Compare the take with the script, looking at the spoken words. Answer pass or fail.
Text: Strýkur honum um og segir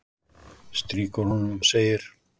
pass